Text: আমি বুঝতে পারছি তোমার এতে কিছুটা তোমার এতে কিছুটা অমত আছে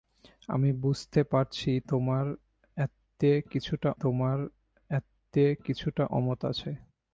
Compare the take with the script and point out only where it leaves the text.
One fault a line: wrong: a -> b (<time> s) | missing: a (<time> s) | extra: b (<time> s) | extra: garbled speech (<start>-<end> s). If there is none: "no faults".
no faults